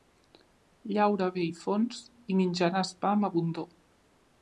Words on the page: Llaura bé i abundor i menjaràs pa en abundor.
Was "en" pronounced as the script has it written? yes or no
no